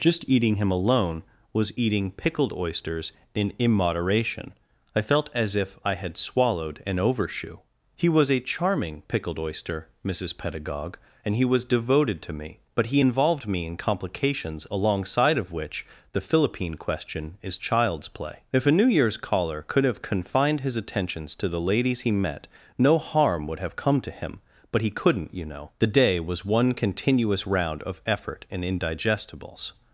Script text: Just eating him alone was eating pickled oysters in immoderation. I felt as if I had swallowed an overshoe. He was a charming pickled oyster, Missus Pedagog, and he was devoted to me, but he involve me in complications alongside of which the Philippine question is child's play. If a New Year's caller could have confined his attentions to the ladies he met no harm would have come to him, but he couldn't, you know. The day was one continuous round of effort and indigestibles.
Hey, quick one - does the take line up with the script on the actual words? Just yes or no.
no